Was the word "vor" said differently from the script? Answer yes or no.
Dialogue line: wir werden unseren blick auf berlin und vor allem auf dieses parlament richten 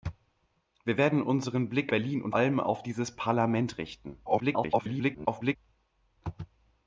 yes